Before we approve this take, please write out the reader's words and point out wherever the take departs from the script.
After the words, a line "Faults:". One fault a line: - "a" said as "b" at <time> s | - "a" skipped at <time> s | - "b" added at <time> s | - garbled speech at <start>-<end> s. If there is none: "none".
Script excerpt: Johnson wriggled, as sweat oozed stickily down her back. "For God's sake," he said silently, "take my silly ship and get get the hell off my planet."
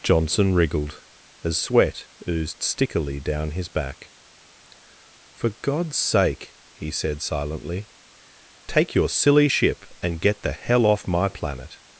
Johnson wriggled, as sweat oozed stickily down his back. "For God's sake," he said silently, "take your silly ship and get the hell off my planet."
Faults:
- "her" said as "his" at 3.5 s
- "my" said as "your" at 8.9 s
- "get" skipped at 10.4 s